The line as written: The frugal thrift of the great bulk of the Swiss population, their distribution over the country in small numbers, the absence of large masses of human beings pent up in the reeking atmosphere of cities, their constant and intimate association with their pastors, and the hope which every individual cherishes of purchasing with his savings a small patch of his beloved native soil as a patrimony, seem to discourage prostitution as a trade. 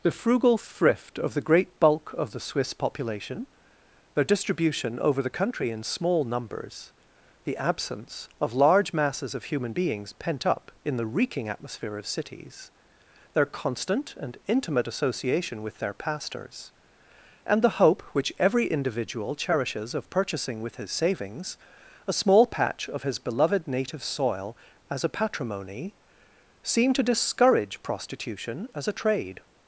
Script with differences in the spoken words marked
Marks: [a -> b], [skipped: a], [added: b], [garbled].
The frugal thrift of the great bulk of the Swiss population, their distribution over the country in small numbers, the absence of large masses of human beings pent up in the reeking atmosphere of cities, their constant and intimate association with their pastors, and the hope which every individual cherishes of purchasing with his savings a small patch of his beloved native soil as a patrimony, seem to discourage prostitution as a trade.